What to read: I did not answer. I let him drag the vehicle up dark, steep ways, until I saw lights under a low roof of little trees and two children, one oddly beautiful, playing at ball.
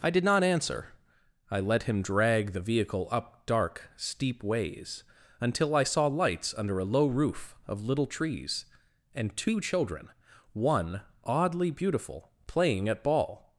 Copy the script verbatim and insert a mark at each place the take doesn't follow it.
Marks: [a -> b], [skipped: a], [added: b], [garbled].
I did not answer. I let him drag the vehicle up dark, steep ways, until I saw lights under a low roof of little trees and two children, one oddly beautiful, playing at ball.